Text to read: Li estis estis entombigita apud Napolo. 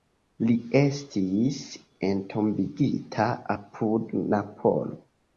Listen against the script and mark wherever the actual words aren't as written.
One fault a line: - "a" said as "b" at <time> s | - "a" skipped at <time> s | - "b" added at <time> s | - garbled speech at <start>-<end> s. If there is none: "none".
- "estis" skipped at 1.6 s